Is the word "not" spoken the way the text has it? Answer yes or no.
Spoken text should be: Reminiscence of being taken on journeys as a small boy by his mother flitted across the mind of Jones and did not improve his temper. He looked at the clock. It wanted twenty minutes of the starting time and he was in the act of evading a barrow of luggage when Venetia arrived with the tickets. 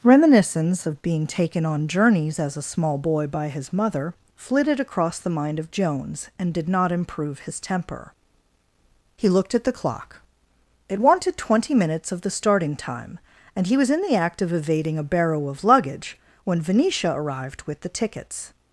yes